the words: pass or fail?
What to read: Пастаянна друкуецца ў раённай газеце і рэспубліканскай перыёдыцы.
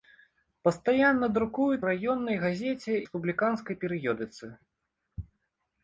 fail